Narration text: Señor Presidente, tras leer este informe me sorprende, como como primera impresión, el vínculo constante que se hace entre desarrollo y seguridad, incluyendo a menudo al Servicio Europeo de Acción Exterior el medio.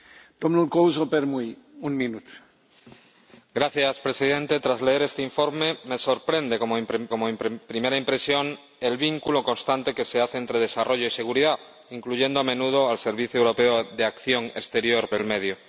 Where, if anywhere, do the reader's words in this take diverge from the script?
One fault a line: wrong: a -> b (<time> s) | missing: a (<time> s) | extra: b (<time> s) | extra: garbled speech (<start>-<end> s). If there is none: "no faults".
no faults